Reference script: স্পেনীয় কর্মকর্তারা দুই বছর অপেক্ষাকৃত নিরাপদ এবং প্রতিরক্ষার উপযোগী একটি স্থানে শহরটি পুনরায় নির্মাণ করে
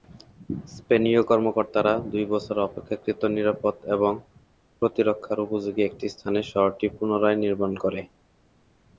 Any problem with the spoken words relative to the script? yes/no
no